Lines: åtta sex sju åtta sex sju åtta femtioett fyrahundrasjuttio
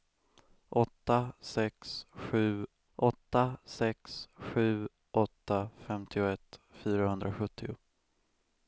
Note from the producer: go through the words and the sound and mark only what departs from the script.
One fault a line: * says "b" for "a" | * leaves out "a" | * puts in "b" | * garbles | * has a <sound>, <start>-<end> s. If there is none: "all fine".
all fine